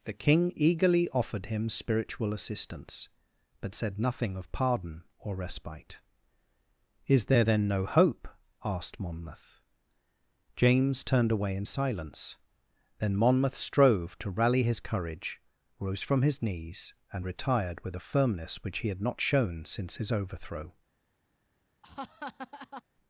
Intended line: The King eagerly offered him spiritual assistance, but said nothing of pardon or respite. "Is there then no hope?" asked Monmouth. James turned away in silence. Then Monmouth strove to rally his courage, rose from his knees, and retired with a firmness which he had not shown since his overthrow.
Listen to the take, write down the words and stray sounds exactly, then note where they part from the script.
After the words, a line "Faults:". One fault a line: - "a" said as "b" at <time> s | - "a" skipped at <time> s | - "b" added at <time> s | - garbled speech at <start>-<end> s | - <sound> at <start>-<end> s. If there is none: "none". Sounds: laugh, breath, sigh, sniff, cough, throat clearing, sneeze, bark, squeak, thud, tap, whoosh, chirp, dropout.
The King eagerly offered him spiritual assistance, but said nothing of pardon or respite. "Is there then no hope?" asked Monmouth. James turned away in silence. Then Monmouth strove to rally his courage, rose from his knees, and retired with a firmness which he had not shown since his overthrow.
Faults:
- laugh at 21.8-22.8 s